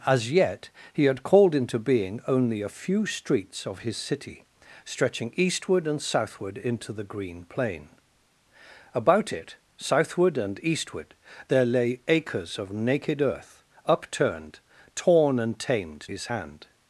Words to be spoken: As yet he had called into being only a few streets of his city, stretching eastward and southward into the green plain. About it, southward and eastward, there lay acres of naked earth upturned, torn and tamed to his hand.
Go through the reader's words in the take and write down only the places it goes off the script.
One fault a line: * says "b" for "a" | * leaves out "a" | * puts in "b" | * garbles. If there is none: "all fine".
* leaves out "to"